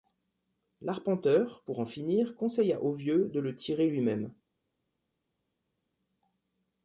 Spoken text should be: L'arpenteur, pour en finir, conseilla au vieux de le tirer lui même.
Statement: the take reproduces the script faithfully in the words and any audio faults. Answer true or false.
true